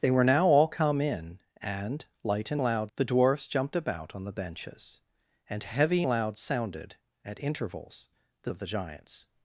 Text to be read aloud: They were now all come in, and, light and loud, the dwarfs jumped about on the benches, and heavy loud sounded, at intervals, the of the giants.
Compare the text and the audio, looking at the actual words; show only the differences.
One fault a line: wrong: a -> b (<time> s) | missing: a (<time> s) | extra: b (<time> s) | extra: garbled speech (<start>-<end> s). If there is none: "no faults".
no faults